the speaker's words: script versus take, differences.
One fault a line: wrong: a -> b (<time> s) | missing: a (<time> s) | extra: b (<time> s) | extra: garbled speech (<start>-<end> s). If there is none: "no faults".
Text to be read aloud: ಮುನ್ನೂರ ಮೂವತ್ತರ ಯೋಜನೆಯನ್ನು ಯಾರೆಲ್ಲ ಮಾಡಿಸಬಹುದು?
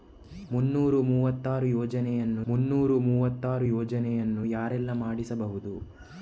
extra: ಮುನ್ನೂರ ಮೂವತ್ತರ ಯೋಜನೆಯನ್ನು (2.5 s)